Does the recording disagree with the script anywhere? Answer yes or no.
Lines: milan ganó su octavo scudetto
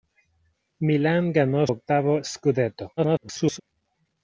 yes